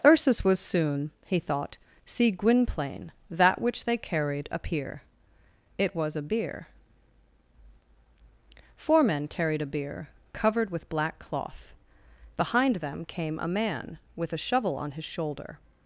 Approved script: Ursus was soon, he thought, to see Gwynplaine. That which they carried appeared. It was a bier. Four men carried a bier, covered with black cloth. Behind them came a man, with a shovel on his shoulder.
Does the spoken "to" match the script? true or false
false